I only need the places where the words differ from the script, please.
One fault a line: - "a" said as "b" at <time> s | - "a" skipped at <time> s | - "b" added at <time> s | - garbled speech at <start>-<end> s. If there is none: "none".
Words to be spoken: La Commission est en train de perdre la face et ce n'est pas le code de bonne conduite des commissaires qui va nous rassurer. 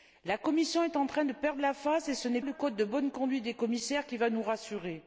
- "pas" skipped at 2.4 s